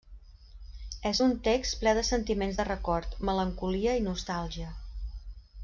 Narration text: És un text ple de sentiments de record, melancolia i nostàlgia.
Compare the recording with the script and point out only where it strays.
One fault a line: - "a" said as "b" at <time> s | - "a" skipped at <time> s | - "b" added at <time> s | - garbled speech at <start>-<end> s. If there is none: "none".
none